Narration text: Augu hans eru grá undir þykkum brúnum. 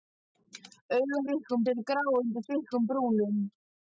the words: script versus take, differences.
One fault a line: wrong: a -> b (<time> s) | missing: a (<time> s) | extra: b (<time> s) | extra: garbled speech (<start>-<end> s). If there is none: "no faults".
wrong: hans -> þykkum (1.3 s)